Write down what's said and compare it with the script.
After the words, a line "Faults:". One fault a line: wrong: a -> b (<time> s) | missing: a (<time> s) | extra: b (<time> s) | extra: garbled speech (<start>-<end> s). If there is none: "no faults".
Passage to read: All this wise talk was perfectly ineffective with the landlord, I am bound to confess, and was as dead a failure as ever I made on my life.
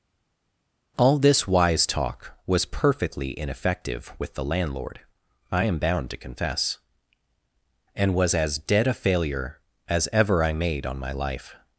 All this wise talk was perfectly ineffective with the landlord, I am bound to confess, and was as dead a failure as ever I made on my life.
Faults:
no faults